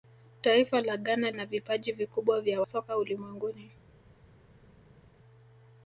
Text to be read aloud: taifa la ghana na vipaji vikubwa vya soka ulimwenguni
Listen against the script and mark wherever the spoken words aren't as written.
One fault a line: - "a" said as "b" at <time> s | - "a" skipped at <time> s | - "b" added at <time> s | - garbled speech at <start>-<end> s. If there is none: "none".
none